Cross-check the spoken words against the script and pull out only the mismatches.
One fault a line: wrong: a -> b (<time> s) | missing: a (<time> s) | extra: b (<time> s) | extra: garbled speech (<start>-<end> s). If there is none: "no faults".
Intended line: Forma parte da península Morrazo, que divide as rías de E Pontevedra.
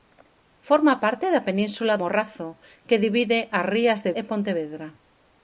no faults